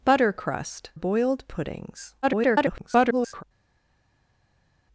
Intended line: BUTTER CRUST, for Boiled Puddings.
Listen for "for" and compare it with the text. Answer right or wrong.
wrong